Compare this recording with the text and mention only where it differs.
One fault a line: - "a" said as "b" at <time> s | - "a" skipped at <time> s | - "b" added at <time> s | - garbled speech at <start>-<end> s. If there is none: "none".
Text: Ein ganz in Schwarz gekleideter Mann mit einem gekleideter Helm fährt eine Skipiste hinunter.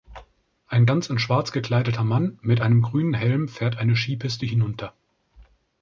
- "gekleideter" said as "grünen" at 2.8 s